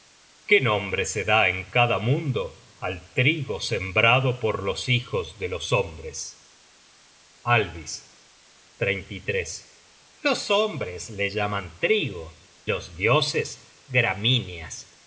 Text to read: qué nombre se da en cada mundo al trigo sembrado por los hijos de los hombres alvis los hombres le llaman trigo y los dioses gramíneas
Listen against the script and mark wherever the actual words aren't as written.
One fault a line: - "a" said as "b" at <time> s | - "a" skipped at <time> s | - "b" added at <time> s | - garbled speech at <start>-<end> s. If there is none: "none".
- "y" skipped at 12.3 s